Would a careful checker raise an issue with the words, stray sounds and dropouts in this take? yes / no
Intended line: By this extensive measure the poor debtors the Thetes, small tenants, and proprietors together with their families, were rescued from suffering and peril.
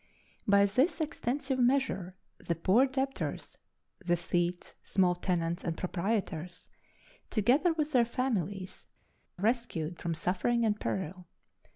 yes